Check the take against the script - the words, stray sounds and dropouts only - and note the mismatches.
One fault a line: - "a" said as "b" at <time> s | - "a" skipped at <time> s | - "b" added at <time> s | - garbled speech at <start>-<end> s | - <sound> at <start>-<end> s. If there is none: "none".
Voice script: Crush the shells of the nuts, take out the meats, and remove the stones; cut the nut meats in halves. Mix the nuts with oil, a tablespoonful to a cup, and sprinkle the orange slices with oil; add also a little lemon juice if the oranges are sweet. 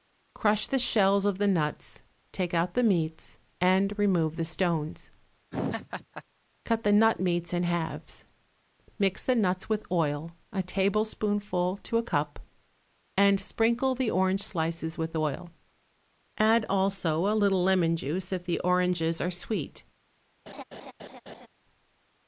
- laugh at 5.5-6.2 s
- laugh at 20.5-21.5 s